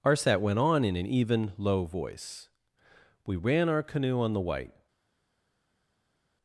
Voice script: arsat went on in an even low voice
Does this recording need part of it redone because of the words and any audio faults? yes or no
yes